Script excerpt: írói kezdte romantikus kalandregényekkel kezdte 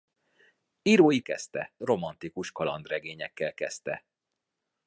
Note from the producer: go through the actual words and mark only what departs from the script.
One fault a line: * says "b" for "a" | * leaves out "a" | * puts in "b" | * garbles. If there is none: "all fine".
all fine